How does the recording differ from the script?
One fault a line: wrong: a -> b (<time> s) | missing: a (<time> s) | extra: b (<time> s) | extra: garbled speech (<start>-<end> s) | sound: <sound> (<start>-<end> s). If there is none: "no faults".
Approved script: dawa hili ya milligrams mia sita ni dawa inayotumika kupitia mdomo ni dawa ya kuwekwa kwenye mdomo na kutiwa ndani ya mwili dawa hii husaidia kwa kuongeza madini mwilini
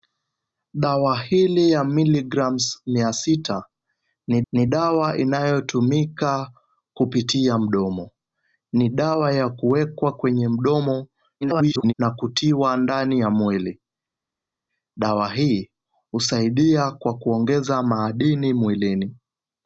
extra: ni (4.5 s)
extra: garbled speech (11.4-11.9 s)